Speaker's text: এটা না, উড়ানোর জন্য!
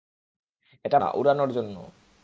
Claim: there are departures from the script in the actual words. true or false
false